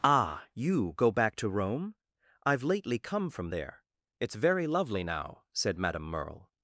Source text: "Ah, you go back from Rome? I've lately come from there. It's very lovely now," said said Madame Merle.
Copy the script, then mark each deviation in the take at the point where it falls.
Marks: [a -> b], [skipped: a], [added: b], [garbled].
"Ah, you go back [from -> to] Rome? I've lately come from there. It's very lovely now," said [skipped: said] Madame Merle.